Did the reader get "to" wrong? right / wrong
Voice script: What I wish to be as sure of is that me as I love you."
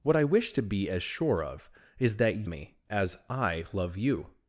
right